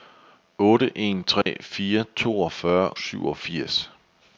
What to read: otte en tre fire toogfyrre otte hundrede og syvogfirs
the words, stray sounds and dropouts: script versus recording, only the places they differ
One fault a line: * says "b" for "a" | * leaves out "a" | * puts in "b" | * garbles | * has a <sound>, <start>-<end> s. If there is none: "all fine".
* has a dropout, 1.4-1.5 s
* leaves out "otte hundrede og"